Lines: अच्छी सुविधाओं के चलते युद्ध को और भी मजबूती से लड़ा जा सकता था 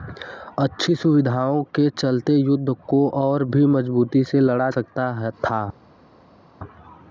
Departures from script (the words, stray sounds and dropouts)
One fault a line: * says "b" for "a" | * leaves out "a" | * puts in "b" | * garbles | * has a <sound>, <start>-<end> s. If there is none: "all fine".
* leaves out "जा"